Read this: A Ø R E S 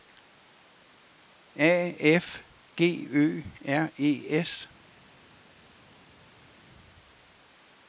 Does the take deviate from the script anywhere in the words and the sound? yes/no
yes